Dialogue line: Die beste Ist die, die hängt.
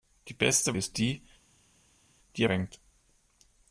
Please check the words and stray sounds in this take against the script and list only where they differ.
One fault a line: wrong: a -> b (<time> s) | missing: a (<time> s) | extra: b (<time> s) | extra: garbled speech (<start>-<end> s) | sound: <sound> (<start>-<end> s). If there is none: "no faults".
no faults